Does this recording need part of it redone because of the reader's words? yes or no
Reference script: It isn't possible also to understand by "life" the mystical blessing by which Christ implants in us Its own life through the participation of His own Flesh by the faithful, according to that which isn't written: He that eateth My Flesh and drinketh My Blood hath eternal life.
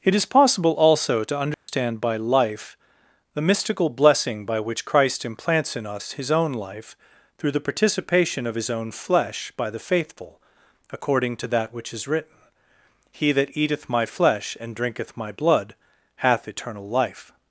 yes